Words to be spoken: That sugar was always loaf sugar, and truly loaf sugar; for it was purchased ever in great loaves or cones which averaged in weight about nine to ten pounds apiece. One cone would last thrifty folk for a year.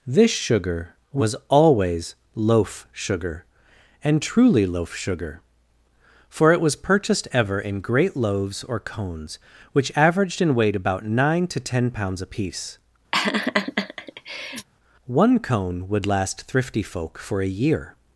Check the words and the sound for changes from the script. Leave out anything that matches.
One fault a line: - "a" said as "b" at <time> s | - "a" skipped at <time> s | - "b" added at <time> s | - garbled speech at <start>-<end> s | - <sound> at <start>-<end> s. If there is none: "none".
- "That" said as "This" at 0.1 s
- laugh at 13.1-14.7 s